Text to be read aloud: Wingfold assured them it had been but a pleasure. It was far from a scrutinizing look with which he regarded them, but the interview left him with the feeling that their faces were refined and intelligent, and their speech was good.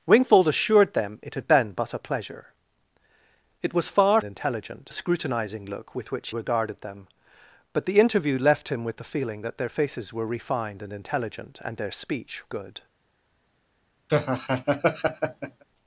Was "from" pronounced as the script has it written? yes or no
no